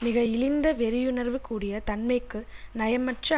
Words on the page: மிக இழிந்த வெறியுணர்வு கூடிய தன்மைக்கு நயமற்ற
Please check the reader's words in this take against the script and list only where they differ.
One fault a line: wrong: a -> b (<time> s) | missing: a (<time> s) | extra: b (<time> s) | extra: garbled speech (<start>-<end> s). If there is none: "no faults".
no faults